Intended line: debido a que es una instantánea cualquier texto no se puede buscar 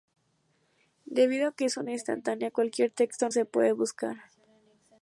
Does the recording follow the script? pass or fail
fail